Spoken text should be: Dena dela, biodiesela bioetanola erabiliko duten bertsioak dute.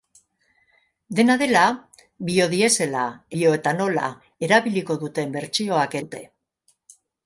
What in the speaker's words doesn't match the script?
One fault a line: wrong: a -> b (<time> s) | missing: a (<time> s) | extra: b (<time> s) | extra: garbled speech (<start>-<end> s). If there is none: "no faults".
no faults